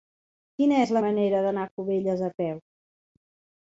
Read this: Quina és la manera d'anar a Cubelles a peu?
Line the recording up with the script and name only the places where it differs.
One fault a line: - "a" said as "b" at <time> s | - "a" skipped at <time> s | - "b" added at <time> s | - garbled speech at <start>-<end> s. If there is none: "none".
none